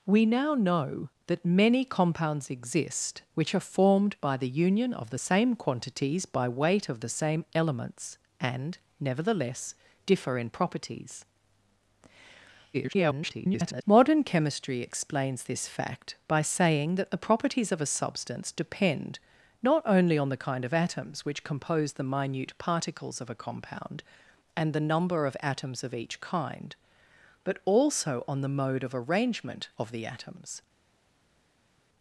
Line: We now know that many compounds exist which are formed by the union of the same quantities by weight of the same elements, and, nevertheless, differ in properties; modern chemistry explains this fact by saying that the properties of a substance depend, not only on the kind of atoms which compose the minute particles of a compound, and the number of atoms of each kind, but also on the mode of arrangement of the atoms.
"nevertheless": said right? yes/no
yes